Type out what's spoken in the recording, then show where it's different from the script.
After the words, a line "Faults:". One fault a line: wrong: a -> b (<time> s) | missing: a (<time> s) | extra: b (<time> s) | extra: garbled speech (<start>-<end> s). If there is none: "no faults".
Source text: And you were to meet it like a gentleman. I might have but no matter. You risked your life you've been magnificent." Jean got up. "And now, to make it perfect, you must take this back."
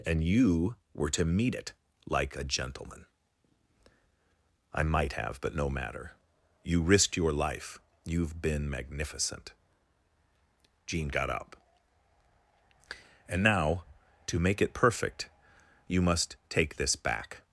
And you were to meet it like a gentleman. I might have but no matter. You risked your life you've been magnificent." Jean got up. "And now, to make it perfect, you must take this back."
Faults:
no faults